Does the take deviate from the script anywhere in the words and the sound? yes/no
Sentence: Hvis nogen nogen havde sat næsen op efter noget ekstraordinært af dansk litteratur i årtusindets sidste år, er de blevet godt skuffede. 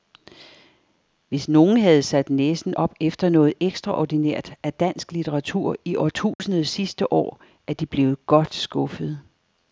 yes